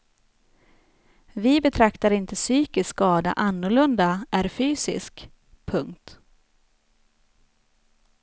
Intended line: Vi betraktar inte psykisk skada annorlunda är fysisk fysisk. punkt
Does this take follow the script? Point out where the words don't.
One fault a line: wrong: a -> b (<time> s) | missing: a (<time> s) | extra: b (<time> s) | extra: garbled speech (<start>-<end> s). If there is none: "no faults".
missing: fysisk (5.3 s)